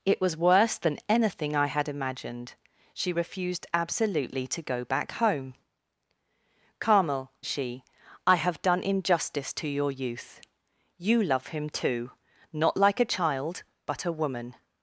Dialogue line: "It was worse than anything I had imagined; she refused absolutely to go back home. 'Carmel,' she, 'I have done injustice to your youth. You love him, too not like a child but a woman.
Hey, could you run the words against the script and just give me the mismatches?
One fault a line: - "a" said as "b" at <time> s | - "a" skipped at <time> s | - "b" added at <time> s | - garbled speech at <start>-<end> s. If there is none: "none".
none